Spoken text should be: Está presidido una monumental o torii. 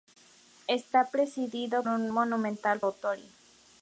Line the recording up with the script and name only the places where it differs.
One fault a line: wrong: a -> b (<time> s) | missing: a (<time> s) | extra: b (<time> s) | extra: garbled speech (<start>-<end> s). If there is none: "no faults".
no faults